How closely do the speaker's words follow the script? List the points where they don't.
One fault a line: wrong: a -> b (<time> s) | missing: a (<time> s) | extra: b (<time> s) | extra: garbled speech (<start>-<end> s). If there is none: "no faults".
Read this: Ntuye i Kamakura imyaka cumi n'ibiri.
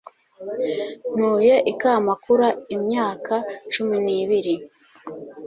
no faults